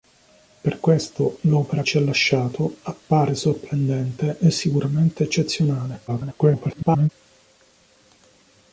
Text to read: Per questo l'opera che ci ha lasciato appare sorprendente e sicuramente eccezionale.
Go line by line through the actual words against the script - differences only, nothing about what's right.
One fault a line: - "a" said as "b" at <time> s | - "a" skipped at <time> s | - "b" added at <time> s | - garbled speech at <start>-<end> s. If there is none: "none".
- "che" skipped at 1.8 s
- garbled speech at 6.1-7.1 s